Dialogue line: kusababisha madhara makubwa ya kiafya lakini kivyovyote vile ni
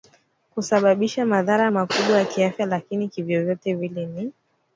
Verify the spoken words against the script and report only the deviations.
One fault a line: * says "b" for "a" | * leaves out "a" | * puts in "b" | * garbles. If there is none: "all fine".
all fine